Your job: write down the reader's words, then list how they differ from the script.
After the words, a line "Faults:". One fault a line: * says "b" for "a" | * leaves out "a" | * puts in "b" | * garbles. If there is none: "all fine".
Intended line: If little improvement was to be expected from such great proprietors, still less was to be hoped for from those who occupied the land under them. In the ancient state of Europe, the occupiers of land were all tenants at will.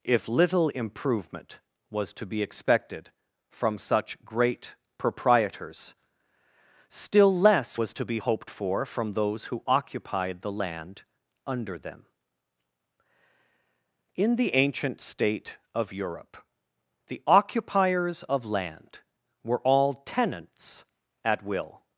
If little improvement was to be expected from such great proprietors, still less was to be hoped for from those who occupied the land under them. In the ancient state of Europe, the occupiers of land were all tenants at will.
Faults:
all fine